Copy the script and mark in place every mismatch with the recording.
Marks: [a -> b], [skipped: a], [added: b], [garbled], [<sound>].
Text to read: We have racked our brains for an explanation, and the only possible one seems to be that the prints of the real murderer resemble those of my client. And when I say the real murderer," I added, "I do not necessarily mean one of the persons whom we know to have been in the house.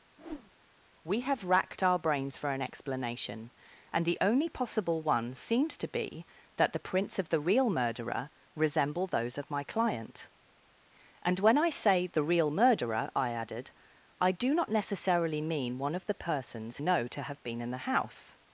[whoosh] We have racked our brains for an explanation, and the only possible one seems to be that the prints of the real murderer resemble those of my client. And when I say the real murderer," I added, "I do not necessarily mean one of the persons [skipped: whom we] know to have been in the house.